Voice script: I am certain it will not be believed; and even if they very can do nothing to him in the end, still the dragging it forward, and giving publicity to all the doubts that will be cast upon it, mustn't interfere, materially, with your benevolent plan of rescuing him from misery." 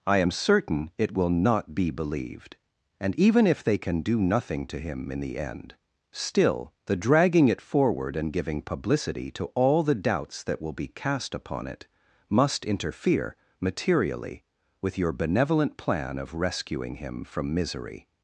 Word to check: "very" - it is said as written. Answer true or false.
false